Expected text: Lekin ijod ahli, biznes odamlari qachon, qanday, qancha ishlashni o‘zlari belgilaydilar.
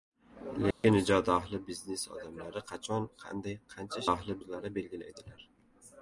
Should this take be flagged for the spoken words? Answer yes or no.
yes